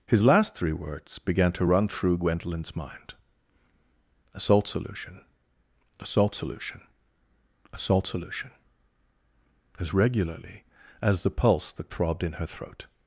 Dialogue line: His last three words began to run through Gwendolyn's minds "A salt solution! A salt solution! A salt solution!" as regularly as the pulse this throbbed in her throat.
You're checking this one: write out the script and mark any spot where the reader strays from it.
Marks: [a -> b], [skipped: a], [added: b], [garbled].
His last three words began to run through Gwendolyn's [minds -> mind] "A salt solution! A salt solution! A salt solution!" as regularly as the pulse [this -> that] throbbed in her throat.